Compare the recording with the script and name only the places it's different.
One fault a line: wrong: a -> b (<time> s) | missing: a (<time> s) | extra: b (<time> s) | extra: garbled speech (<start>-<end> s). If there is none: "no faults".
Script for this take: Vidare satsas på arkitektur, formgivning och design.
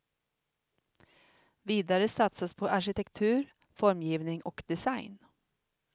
no faults